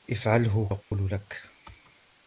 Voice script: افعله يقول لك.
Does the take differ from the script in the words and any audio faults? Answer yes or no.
yes